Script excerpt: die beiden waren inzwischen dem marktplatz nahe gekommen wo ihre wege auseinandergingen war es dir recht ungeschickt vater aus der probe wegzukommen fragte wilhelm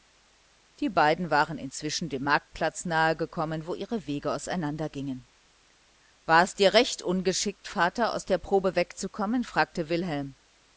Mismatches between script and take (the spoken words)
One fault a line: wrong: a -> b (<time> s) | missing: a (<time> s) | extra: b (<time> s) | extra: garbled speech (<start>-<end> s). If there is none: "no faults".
no faults